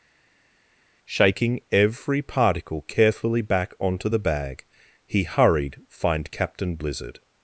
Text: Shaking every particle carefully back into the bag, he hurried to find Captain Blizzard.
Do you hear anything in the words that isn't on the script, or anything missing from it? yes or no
yes